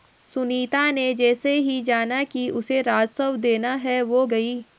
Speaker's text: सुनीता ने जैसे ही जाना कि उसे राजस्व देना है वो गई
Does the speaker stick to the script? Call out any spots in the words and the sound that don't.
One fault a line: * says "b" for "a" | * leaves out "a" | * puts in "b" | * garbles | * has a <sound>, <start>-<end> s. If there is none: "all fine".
all fine